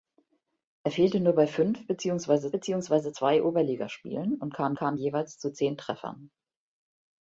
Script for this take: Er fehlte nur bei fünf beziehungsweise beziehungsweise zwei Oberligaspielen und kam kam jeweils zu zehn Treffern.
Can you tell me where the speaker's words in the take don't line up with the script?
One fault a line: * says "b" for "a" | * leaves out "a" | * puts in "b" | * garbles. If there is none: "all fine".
all fine